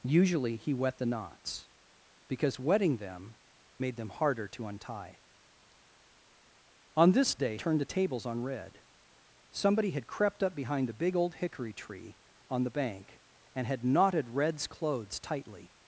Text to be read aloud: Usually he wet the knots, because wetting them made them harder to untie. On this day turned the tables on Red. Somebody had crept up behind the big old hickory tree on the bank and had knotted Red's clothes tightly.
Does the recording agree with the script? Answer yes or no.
yes